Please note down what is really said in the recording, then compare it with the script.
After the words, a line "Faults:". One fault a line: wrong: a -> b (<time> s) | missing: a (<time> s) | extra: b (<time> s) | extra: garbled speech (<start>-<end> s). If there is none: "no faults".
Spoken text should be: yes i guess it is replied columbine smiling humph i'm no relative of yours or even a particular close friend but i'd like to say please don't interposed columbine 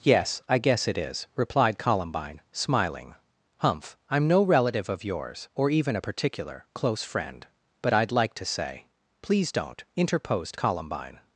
yes i guess it is replied columbine smiling humph i'm no relative of yours or even a particular close friend but i'd like to say please don't interposed columbine
Faults:
no faults